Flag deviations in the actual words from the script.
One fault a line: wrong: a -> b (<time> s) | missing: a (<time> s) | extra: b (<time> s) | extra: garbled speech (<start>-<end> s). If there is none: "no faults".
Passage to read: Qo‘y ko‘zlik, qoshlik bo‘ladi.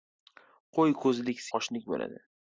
no faults